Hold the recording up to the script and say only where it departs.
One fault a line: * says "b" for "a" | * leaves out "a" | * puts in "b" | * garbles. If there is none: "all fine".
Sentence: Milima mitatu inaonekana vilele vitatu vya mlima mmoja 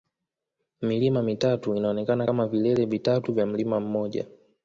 * puts in "kama"